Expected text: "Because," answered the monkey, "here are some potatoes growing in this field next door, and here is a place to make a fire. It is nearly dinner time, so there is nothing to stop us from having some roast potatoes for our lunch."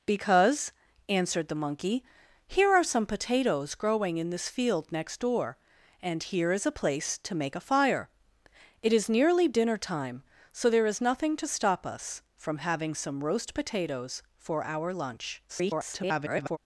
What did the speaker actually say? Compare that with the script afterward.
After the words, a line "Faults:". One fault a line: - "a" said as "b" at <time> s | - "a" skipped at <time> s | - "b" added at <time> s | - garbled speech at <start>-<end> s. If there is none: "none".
"Because," answered the monkey, "here are some potatoes growing in this field next door, and here is a place to make a fire. It is nearly dinner time, so there is nothing to stop us from having some roast potatoes for our lunch." [garbled]
Faults:
- garbled speech at 15.5-16.6 s